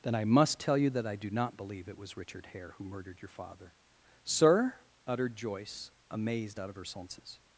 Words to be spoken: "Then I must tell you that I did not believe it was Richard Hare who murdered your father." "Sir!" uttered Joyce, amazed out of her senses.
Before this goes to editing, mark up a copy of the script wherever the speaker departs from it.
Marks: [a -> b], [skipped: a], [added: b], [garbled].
"Then I must tell you that I [did -> do] not believe it was Richard Hare who murdered your father." "Sir!" uttered Joyce, amazed out of her senses.